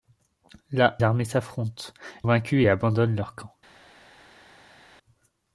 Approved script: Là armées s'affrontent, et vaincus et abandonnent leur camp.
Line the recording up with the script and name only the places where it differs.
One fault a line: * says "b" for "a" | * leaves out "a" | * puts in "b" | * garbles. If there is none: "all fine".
all fine